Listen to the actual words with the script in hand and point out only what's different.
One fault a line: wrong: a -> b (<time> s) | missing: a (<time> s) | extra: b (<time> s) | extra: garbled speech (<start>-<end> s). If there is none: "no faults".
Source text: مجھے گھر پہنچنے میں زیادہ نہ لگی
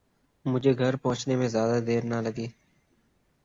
extra: دیر (1.9 s)